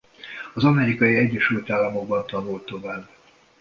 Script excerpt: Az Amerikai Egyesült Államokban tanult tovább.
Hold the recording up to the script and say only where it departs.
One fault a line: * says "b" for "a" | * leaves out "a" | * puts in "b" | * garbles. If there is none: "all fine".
all fine